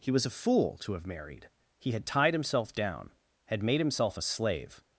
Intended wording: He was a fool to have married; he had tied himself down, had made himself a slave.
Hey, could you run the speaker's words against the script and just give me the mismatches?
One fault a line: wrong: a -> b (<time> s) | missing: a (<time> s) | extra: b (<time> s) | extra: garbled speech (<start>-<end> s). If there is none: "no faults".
no faults